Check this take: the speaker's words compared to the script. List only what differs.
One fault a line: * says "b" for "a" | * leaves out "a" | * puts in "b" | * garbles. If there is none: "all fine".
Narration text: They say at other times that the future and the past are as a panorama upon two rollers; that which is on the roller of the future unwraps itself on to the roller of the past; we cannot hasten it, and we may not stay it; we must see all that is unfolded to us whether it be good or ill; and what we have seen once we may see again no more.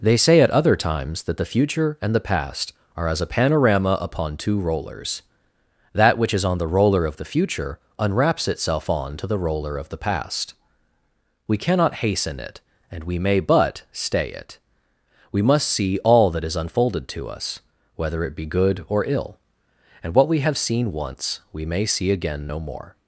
* says "but" for "not"